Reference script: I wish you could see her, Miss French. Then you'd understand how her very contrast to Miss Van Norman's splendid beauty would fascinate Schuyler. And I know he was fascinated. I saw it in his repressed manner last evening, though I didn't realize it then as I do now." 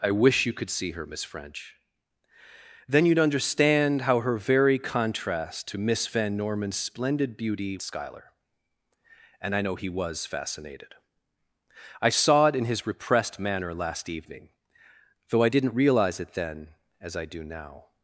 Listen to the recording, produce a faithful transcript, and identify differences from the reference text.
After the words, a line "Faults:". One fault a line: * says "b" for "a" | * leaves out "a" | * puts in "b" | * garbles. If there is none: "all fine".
I wish you could see her, Miss French. Then you'd understand how her very contrast to Miss Van Norman's splendid beauty Schuyler. And I know he was fascinated. I saw it in his repressed manner last evening, though I didn't realize it then as I do now."
Faults:
* leaves out "would fascinate"